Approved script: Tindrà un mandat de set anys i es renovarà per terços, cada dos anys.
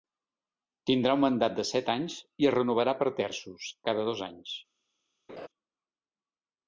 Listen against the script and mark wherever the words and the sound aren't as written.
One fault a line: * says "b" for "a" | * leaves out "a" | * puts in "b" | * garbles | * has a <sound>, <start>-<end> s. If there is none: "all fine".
* has a laugh, 5.3-5.5 s